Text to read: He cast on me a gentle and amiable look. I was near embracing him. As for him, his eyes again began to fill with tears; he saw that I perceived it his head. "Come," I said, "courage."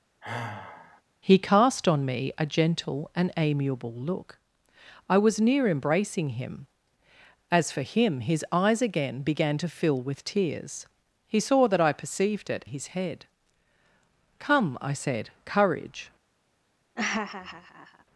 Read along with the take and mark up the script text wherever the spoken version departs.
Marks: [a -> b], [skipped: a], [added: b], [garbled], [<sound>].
[sigh] He cast on me a gentle and amiable look. I was near embracing him. As for him, his eyes again began to fill with tears; he saw that I perceived it his head. "Come," I said, "courage." [laugh]